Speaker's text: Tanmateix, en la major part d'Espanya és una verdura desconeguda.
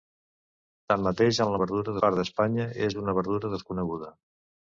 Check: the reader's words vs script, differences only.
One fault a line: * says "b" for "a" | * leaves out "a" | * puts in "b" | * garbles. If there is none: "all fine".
* says "verdura" for "major"